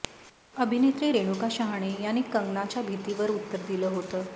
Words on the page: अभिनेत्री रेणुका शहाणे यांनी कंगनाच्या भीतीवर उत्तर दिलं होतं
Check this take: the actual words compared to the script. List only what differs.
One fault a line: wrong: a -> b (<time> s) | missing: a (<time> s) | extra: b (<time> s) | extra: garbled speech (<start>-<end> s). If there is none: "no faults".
no faults